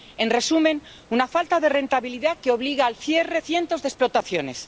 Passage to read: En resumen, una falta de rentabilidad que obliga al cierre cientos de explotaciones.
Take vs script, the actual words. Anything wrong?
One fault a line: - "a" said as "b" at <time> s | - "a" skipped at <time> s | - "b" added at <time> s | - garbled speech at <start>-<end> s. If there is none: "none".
none